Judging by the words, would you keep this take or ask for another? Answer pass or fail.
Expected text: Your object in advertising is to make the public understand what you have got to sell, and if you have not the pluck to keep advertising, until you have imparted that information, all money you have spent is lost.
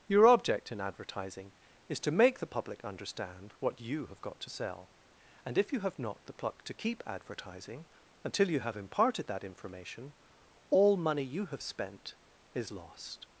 pass